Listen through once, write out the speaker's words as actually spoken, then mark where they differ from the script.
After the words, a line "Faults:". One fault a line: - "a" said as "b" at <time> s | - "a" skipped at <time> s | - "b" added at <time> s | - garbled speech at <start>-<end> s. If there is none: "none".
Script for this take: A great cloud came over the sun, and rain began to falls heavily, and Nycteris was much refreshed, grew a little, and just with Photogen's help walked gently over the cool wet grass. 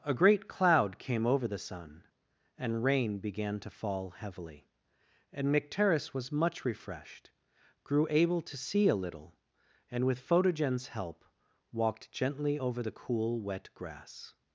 A great cloud came over the sun, and rain began to fall heavily, and Nycteris was much refreshed, grew able to see a little, and with Photogen's help walked gently over the cool wet grass.
Faults:
- "falls" said as "fall" at 3.7 s
- "able to see" added at 8.1 s
- "just" skipped at 10.1 s